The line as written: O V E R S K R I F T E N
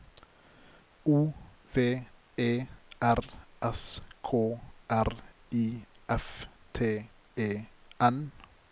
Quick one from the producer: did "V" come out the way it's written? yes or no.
yes